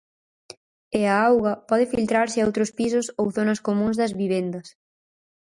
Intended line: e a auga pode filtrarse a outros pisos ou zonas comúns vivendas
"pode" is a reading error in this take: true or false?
false